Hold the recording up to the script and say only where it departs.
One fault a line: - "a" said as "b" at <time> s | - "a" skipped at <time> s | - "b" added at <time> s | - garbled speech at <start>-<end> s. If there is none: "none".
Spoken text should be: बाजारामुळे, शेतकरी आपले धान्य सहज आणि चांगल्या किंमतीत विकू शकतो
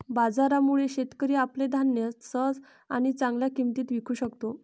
none